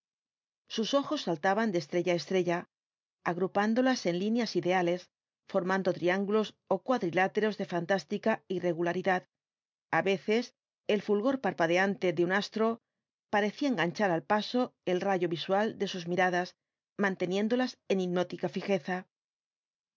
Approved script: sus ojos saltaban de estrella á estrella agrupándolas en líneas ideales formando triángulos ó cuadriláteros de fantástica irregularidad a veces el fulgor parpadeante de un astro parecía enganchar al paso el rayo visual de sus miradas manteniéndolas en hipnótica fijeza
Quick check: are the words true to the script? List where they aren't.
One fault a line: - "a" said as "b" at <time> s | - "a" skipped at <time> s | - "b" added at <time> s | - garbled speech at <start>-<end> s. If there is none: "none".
none